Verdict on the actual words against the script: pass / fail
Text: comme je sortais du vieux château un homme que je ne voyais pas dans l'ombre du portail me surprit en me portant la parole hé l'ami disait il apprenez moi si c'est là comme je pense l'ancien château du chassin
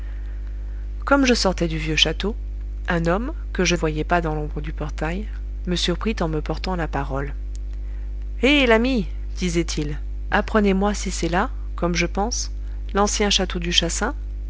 fail